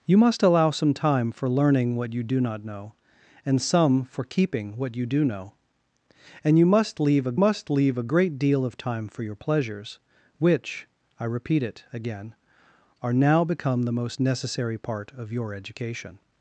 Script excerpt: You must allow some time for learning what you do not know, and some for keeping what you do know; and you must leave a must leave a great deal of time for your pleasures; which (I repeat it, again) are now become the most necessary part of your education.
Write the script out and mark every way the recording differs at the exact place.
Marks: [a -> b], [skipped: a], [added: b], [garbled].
You must allow some time for learning what you do not know, and some for keeping what you do know; and you must leave a must leave a great deal of time for your pleasures; which (I repeat it, again) are now become the most necessary part of your education.